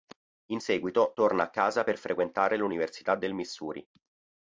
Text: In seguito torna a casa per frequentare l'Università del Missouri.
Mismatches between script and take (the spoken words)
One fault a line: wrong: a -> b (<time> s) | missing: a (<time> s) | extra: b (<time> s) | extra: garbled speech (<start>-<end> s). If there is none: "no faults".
no faults